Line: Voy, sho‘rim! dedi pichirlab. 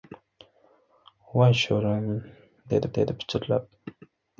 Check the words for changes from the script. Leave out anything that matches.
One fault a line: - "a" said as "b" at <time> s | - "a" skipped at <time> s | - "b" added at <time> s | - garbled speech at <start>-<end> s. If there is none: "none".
- "dedi" added at 3.0 s